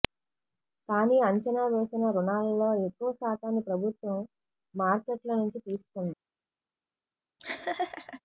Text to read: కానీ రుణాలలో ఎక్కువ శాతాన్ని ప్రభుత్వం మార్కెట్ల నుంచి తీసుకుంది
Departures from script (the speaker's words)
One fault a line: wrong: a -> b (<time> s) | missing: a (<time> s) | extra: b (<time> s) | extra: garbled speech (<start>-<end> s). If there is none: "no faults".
extra: అంచనా వేసిన (1.3 s)